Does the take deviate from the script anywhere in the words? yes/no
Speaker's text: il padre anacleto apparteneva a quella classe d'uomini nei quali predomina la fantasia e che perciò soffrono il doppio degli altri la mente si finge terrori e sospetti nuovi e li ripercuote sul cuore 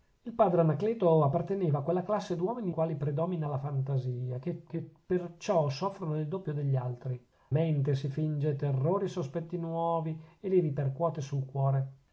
yes